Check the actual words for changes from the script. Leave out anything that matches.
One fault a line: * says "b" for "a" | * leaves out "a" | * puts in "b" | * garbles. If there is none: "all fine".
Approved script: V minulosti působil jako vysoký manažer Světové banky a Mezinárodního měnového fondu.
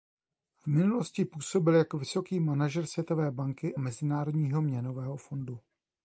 * leaves out "a"